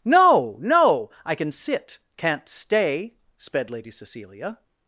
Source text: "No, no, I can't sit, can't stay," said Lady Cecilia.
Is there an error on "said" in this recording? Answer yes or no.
yes